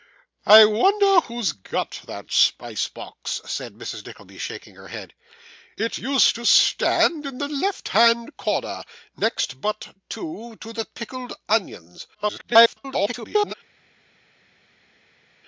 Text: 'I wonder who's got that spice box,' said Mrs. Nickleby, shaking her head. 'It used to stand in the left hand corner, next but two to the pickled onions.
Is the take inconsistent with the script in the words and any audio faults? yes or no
yes